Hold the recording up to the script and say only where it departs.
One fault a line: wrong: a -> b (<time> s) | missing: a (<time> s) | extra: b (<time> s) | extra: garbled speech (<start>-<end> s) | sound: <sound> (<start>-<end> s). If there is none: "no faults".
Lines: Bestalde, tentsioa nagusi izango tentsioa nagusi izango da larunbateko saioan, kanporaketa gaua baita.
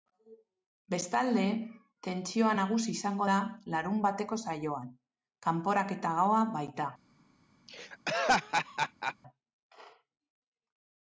missing: tentsioa nagusi izango (3.3 s)
sound: laugh (7.7-9.2 s)